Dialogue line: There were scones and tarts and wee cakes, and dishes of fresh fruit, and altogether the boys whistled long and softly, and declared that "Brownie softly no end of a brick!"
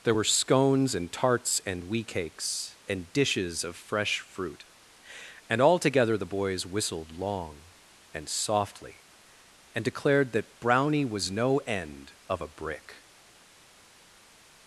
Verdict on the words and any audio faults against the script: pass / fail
fail